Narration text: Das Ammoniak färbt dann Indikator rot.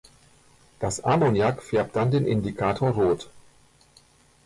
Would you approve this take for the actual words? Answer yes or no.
no